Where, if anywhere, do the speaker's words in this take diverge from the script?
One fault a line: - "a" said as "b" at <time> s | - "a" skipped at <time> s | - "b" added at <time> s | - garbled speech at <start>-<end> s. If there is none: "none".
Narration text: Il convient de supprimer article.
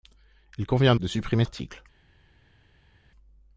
none